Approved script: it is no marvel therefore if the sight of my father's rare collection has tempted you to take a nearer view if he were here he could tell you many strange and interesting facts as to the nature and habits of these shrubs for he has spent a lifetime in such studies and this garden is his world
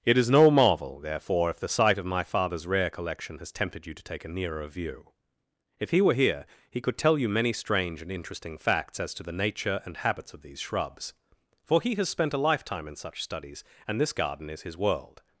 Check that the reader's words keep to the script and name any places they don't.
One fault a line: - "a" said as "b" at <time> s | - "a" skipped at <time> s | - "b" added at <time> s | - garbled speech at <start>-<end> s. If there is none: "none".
none